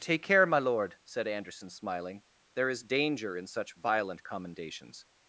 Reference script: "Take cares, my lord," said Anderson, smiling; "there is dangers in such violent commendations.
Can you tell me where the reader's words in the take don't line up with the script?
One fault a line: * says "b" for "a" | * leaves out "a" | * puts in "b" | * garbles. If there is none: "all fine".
* says "care" for "cares"
* says "danger" for "dangers"